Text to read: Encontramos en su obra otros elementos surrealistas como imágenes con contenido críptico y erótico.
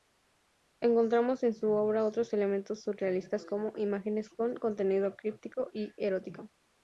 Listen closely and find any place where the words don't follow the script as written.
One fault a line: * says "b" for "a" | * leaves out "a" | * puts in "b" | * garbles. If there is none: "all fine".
all fine